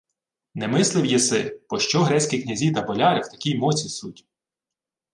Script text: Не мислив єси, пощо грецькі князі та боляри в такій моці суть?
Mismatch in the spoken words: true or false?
false